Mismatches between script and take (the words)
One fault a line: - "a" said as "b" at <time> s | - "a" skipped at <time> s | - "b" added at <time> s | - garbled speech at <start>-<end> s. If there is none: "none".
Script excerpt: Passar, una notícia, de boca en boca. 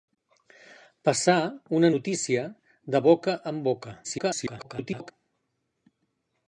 - garbled speech at 4.0-5.1 s